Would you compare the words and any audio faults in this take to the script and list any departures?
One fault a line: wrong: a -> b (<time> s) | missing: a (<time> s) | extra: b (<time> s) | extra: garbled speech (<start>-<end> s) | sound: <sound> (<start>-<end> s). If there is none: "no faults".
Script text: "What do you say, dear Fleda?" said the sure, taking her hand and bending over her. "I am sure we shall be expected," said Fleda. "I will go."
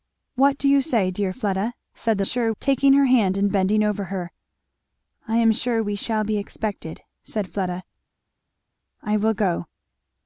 no faults